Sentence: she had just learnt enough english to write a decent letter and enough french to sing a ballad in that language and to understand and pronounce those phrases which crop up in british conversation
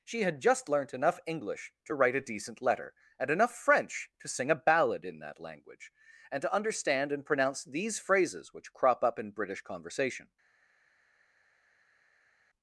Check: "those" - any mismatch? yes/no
yes